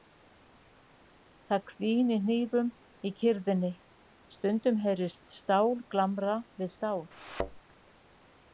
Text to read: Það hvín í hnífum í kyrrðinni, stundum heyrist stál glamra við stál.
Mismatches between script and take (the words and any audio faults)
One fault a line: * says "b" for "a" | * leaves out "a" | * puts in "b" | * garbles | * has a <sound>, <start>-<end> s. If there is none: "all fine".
* has a thud, 7.1-7.6 s